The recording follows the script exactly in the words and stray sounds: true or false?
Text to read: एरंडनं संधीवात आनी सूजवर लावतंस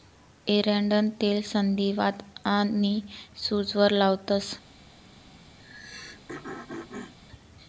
false